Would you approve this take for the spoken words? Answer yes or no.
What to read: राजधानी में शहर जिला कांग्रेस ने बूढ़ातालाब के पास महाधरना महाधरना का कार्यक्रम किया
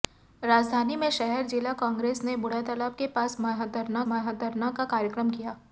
yes